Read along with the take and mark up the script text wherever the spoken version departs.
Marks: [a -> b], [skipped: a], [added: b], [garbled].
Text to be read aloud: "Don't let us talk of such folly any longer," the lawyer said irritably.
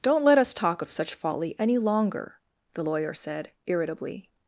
"Don't let us talk of such folly any longer," the lawyer said irritably.